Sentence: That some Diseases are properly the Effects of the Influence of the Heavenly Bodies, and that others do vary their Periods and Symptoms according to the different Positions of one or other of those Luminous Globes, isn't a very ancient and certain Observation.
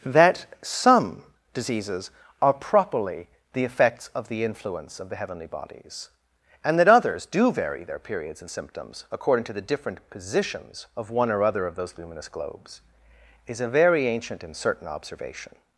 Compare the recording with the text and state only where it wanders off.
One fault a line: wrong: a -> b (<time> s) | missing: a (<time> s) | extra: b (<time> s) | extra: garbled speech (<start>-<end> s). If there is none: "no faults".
wrong: isn't -> is (13.5 s)